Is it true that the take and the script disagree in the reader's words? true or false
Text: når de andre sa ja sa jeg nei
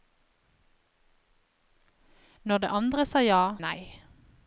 true